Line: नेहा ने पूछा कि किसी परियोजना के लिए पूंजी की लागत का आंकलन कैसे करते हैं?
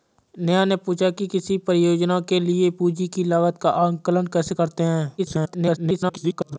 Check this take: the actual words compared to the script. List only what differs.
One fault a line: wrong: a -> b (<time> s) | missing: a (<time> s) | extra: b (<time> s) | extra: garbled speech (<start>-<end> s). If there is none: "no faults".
extra: garbled speech (5.2-6.6 s)